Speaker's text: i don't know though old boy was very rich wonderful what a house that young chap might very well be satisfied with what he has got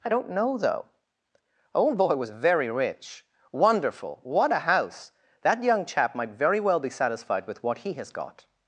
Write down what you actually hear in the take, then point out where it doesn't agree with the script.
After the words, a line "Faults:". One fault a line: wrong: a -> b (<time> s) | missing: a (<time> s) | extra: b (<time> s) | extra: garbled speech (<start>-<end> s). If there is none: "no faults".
i don't know though old boy was very rich wonderful what a house that young chap might very well be satisfied with what he has got
Faults:
no faults